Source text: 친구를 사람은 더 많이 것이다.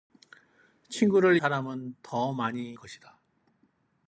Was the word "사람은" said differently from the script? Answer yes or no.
no